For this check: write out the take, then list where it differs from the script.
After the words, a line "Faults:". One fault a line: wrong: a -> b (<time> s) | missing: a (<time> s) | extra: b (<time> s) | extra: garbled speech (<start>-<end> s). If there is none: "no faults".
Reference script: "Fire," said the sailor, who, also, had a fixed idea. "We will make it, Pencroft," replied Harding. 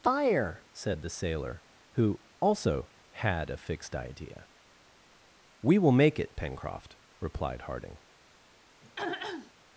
"Fire," said the sailor, who, also, had a fixed idea. "We will make it, Pencroft," replied Harding.
Faults:
no faults